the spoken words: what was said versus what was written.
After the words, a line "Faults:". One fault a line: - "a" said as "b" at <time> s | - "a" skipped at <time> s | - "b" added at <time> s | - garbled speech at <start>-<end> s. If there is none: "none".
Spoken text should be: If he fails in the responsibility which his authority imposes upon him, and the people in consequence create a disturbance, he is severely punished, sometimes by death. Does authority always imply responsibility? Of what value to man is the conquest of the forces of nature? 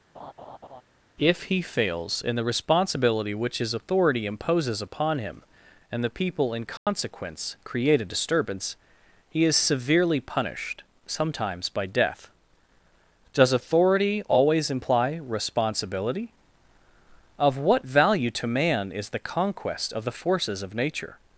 If he fails in the responsibility which his authority imposes upon him, and the people in consequence create a disturbance, he is severely punished, sometimes by death. Does authority always imply responsibility? Of what value to man is the conquest of the forces of nature?
Faults:
none